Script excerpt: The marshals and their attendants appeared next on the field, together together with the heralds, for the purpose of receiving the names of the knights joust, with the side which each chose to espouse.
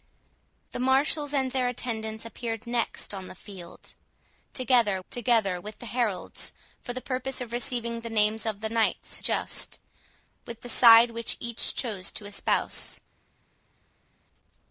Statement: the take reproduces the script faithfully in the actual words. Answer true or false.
true